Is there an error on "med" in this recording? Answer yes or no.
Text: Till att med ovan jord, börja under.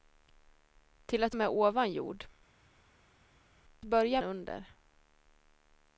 no